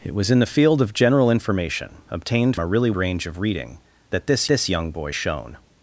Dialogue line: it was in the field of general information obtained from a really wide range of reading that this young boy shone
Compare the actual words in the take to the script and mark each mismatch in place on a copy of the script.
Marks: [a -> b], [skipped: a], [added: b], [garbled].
it was in the field of general information obtained [skipped: from] a really [skipped: wide] range of reading that this [added: this] young boy shone